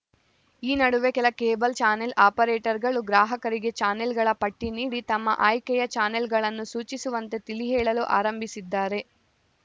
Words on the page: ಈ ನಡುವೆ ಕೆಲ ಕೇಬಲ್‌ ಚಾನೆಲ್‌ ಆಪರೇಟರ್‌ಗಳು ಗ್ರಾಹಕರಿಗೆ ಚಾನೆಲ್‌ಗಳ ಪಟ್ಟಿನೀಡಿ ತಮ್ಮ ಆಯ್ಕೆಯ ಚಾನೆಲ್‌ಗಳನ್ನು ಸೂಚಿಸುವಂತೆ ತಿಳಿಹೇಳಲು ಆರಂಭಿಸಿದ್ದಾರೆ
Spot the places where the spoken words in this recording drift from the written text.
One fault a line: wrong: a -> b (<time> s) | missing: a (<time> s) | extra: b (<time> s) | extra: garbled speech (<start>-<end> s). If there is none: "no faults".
no faults